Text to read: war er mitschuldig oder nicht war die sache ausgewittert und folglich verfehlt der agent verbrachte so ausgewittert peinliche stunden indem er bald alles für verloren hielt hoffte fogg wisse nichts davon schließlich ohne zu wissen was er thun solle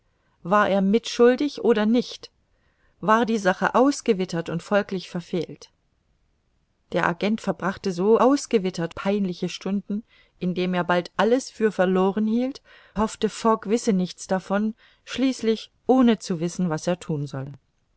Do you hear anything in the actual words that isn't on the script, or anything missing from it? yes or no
no